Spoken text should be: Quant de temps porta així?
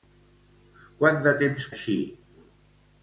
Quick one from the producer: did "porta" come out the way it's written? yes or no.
no